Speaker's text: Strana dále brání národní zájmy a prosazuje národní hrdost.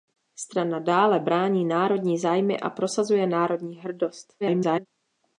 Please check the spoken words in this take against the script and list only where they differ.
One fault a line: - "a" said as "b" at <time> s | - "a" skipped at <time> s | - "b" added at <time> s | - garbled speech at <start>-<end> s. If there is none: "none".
- garbled speech at 4.4-4.9 s